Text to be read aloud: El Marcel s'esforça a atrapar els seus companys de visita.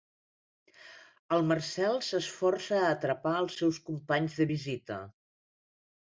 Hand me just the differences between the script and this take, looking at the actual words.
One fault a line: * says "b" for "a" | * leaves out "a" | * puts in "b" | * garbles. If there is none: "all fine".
all fine